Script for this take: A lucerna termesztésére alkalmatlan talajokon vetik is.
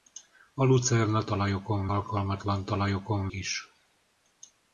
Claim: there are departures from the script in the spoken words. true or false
true